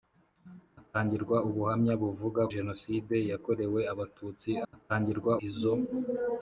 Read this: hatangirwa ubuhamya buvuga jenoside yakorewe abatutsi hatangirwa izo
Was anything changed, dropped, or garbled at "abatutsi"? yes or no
no